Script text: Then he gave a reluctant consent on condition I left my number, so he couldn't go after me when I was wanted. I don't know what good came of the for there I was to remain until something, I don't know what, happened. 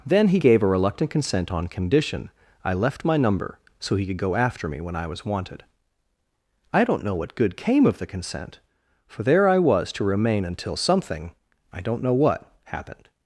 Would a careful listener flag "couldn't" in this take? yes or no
yes